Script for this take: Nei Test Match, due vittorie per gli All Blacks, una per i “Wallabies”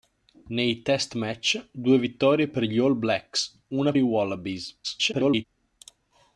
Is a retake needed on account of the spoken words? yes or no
yes